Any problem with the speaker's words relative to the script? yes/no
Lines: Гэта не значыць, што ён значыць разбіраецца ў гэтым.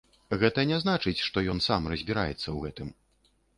yes